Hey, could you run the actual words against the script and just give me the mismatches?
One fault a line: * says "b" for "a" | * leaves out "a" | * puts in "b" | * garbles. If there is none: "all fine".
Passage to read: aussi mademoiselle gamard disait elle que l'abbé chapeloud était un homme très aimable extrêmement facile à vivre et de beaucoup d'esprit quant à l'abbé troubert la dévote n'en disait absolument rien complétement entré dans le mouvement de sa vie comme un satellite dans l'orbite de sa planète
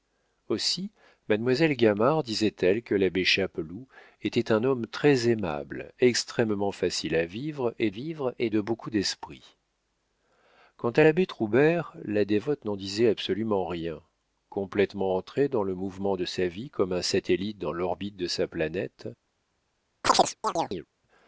* puts in "vivre et"